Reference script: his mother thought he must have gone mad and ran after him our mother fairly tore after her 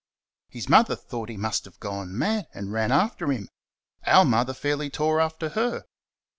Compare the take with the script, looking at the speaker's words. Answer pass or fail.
pass